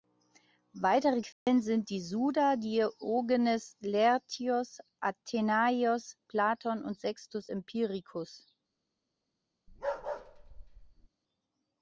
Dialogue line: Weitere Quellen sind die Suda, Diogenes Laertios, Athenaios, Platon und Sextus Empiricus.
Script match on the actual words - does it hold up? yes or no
yes